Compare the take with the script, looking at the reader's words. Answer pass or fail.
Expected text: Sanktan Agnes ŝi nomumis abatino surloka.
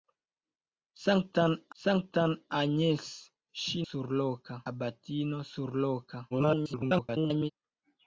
fail